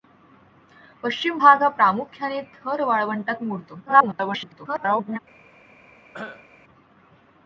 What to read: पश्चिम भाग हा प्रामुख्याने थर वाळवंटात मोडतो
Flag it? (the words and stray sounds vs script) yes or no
yes